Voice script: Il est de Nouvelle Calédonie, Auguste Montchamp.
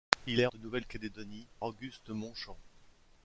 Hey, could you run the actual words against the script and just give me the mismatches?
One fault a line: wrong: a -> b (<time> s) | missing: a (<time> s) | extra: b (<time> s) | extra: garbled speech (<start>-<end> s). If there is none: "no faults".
no faults